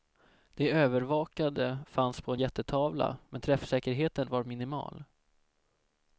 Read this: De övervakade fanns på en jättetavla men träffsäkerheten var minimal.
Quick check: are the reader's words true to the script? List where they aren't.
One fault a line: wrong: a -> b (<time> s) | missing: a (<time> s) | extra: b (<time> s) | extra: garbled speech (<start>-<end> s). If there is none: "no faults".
no faults